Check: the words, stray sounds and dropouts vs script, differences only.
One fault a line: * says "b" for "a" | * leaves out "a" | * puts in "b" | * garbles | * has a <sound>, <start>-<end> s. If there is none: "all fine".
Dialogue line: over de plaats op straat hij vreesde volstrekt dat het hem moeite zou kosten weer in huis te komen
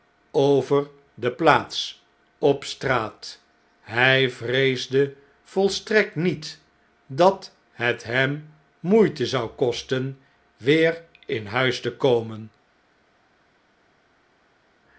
* puts in "niet"